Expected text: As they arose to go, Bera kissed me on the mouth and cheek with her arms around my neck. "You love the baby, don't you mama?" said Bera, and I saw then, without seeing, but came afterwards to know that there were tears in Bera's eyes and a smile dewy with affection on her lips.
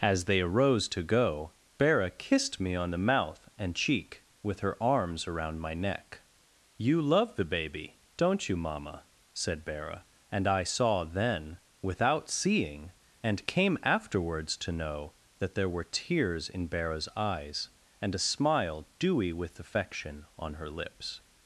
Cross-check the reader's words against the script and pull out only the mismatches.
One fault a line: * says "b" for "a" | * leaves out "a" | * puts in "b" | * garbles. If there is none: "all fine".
* says "and" for "but"